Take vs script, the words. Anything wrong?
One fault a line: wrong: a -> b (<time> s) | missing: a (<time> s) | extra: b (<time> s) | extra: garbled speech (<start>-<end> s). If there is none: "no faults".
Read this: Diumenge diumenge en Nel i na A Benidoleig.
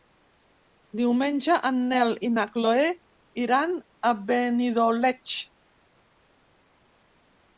missing: diumenge (1.6 s)
extra: Chloé iran (2.5 s)